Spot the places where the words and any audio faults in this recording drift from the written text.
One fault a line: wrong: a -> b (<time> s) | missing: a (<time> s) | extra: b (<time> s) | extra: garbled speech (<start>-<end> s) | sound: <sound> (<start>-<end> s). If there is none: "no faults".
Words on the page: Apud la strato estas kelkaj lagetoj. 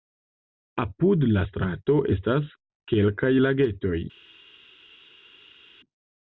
no faults